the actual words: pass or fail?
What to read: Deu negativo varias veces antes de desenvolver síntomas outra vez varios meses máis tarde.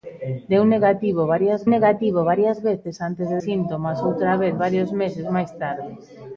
fail